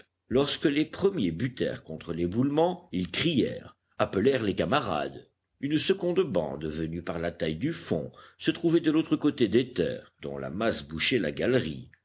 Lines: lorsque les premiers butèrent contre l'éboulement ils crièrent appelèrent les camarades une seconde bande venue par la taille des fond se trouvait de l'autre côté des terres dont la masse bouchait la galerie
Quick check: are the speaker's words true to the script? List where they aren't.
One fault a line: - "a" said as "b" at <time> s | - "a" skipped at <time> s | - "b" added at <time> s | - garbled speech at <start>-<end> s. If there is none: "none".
- "des" said as "du" at 7.5 s